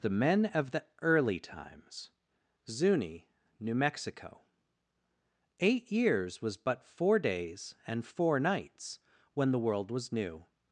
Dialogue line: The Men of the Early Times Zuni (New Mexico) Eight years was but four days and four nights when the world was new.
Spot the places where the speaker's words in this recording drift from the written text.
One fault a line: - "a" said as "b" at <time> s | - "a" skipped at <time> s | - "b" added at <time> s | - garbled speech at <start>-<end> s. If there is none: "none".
none